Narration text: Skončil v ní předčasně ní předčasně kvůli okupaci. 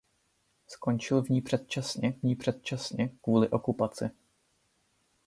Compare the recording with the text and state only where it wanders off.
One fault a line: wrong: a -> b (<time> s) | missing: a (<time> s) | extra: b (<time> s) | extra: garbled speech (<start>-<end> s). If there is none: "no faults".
no faults